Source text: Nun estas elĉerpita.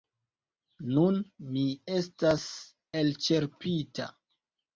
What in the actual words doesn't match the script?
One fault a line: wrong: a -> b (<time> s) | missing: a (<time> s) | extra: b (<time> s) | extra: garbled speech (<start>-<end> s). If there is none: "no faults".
extra: mi (1.5 s)